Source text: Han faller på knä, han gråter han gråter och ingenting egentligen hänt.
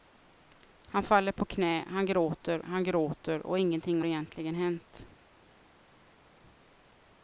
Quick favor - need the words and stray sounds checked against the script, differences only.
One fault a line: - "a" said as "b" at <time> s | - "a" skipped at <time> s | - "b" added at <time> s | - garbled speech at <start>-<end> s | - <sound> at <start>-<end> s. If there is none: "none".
none